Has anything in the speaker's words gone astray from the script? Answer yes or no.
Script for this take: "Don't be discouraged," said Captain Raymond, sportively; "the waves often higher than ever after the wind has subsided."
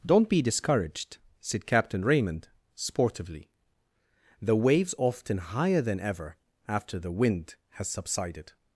no